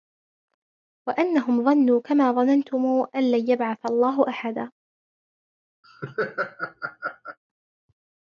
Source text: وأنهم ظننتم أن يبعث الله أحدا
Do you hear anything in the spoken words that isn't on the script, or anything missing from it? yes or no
yes